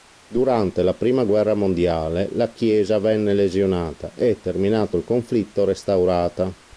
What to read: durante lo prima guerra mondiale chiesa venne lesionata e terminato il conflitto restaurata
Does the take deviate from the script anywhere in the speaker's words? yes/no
yes